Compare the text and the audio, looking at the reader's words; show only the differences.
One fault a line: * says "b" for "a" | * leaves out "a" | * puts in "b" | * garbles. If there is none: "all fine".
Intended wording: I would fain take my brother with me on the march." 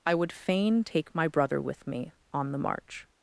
all fine